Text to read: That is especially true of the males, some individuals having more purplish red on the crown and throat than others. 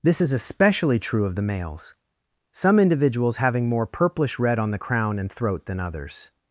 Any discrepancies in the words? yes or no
yes